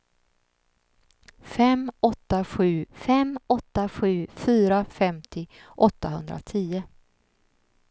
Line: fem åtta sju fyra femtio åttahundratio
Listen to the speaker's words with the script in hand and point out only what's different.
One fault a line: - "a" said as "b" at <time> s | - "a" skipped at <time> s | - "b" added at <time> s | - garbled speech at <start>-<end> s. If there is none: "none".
- "fem åtta sju" added at 2.9 s